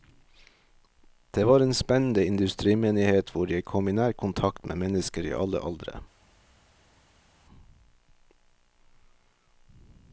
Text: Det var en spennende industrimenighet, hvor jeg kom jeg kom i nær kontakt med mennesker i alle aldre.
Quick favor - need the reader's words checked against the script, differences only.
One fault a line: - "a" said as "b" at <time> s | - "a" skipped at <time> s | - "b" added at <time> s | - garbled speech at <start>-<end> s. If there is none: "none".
- "jeg kom" skipped at 3.9 s